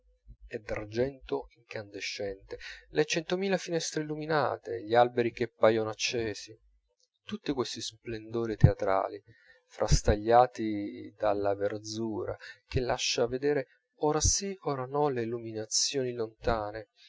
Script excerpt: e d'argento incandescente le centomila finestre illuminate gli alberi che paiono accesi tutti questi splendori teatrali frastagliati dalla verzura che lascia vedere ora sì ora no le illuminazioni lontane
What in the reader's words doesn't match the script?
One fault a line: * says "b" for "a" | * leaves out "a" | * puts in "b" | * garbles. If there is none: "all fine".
all fine